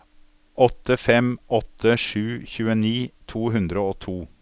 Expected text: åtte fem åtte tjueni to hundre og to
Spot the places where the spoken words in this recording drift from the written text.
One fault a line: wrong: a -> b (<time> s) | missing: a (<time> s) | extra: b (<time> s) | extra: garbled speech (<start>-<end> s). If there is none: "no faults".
extra: sju (1.9 s)